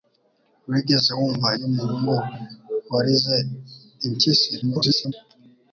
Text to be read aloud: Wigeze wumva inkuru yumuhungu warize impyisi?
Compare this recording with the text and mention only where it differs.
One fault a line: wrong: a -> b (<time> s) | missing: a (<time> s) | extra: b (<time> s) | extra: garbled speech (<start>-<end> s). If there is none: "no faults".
missing: inkuru (1.5 s)
extra: garbled speech (4.6-5.1 s)